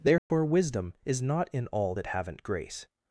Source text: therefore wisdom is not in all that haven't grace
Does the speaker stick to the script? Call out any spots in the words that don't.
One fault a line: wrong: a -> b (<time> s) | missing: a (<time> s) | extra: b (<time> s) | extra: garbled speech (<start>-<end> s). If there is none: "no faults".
no faults